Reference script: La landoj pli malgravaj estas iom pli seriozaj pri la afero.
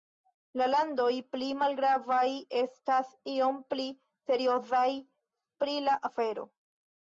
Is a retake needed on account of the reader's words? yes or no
no